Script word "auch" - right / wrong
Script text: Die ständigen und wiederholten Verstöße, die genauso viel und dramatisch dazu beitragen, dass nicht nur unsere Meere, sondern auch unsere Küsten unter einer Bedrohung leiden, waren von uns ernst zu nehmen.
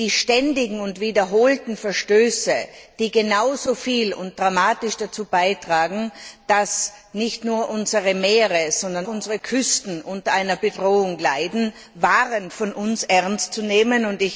wrong